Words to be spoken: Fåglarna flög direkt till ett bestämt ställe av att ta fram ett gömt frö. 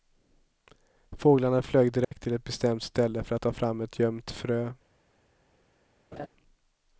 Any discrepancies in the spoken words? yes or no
yes